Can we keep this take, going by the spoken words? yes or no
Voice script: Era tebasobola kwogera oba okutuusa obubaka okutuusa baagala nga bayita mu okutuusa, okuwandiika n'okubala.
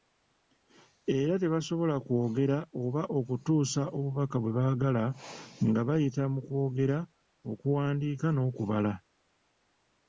no